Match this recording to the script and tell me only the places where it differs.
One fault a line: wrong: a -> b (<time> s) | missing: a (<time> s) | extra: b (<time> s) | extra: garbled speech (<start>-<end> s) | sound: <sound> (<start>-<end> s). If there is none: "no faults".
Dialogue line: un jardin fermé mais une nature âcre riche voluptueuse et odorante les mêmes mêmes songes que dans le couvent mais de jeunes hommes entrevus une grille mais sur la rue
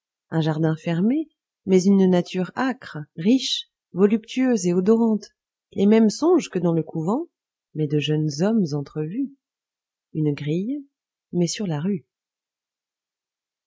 missing: mêmes (6.1 s)